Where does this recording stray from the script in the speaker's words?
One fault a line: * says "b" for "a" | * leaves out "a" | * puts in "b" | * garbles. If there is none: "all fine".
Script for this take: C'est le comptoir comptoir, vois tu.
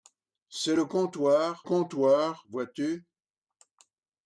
all fine